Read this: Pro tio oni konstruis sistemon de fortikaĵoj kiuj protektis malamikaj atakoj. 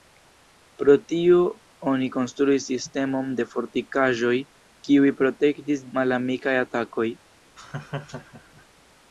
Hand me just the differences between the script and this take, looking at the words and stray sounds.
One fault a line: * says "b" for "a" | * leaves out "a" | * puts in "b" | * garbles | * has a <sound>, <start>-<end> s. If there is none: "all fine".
* has a laugh, 7.6-8.7 s